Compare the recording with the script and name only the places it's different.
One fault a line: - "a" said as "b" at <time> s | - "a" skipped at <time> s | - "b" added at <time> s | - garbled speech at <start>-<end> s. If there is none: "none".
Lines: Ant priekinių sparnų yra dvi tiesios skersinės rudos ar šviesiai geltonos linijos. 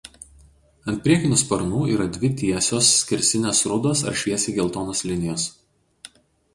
none